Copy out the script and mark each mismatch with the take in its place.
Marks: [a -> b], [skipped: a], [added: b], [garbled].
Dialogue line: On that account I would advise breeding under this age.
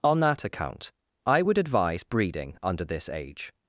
On that account I would advise breeding under this age.